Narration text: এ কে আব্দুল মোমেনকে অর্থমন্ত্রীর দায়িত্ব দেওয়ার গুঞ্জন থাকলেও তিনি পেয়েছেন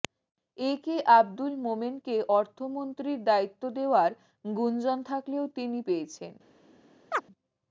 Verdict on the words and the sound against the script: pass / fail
fail